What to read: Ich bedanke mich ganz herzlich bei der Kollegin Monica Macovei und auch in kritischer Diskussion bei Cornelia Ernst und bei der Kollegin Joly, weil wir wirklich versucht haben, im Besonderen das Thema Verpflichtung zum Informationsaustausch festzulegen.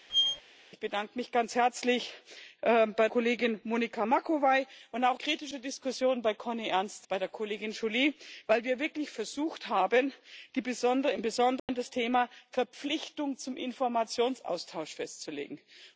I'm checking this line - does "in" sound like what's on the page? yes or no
no